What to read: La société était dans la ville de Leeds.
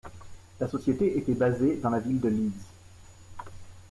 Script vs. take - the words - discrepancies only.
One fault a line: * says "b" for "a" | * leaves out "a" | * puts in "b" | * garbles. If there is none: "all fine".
* puts in "basée"